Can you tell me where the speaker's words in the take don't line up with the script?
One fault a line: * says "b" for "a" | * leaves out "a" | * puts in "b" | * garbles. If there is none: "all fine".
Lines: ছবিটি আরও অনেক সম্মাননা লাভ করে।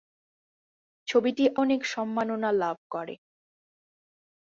* leaves out "আরও"